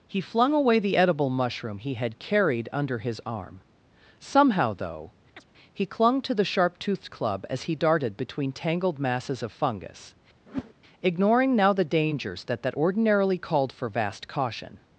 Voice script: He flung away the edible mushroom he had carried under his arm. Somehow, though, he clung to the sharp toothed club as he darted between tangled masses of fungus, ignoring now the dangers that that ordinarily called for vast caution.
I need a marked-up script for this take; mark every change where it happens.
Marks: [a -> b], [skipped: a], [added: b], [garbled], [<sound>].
He flung away the edible mushroom he had carried under his arm. Somehow, though, [chirp] he clung to the sharp toothed club as he darted between tangled masses of fungus, [whoosh] ignoring now the dangers that that ordinarily called for vast caution.